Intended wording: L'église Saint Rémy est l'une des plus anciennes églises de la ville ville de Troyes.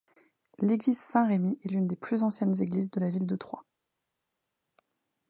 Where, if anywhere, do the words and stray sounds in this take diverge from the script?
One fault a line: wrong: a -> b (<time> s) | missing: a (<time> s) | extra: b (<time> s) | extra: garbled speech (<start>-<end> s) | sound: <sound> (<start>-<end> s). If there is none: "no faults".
missing: ville (3.3 s)